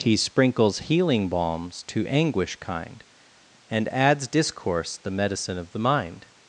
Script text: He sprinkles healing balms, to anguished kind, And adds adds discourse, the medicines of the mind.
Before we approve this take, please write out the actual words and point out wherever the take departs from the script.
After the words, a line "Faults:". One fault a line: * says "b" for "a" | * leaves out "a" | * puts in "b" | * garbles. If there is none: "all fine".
He sprinkles healing balms, to anguish kind, And adds discourse, the medicine of the mind.
Faults:
* says "anguish" for "anguished"
* leaves out "adds"
* says "medicine" for "medicines"